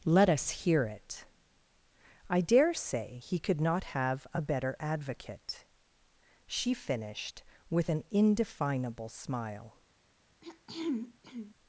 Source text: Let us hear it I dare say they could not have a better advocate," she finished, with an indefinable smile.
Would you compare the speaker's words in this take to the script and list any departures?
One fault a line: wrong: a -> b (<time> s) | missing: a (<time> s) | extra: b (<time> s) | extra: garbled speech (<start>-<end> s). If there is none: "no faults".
wrong: they -> he (3.2 s)